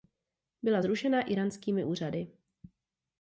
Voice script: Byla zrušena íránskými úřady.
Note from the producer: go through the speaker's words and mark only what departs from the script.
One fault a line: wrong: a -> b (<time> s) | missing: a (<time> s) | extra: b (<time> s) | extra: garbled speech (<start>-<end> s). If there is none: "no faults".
no faults